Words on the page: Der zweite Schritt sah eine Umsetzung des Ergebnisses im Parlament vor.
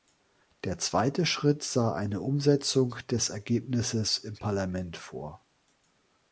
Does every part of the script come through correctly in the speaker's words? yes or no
yes